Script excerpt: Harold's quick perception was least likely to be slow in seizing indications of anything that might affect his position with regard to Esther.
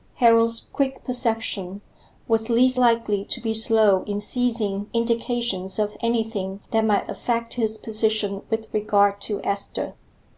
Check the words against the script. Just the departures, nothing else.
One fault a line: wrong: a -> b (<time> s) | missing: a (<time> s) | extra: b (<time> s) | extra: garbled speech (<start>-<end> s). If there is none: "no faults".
no faults